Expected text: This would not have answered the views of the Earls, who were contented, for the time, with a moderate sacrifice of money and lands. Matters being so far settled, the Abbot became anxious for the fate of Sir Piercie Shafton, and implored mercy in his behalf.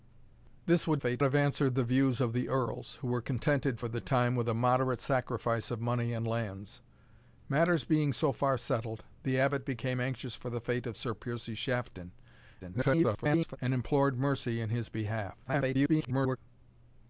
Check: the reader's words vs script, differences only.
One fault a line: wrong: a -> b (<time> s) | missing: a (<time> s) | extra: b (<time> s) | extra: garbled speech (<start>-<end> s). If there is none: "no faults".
wrong: not -> fate (1.0 s)
extra: garbled speech (12.6-13.6 s)
extra: garbled speech (15.4-16.4 s)